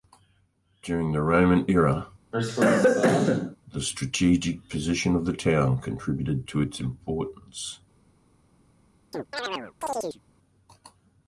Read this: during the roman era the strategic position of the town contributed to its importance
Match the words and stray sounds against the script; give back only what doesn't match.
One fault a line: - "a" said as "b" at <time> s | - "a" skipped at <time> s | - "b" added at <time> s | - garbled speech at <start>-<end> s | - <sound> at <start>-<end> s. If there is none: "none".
- cough at 2.3-3.6 s
- chirp at 9.1-10.2 s